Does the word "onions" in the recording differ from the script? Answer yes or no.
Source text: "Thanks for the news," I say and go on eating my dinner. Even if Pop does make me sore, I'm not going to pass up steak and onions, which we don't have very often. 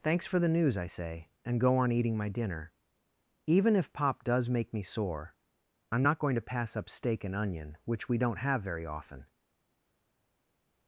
yes